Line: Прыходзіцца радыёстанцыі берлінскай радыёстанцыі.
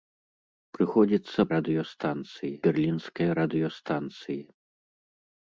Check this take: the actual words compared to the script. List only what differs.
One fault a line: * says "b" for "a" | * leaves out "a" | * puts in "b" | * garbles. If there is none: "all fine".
all fine